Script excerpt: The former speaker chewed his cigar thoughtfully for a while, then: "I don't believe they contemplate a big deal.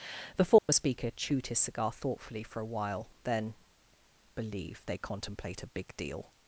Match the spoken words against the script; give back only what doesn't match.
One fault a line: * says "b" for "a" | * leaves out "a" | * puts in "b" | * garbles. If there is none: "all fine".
* leaves out "I don't"